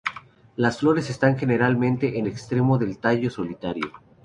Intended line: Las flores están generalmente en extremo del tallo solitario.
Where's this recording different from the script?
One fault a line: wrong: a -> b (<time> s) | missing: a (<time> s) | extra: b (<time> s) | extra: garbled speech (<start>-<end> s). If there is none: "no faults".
no faults